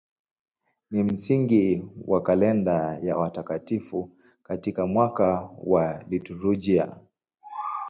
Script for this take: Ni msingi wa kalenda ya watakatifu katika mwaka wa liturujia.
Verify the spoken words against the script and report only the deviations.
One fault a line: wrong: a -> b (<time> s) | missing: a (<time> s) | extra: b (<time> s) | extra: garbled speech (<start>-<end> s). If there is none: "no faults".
no faults